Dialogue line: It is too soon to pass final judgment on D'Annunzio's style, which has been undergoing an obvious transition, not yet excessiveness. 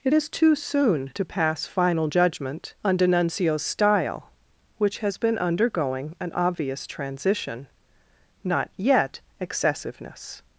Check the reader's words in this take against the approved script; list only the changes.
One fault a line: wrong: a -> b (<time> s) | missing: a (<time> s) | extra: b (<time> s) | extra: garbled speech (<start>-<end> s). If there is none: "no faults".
no faults